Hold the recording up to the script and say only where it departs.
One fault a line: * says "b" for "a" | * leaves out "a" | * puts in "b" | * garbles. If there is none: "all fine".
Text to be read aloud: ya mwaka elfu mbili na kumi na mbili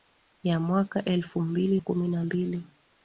* leaves out "na"